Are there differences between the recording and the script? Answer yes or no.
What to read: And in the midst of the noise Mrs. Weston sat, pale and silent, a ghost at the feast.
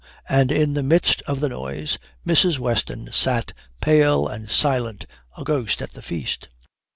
no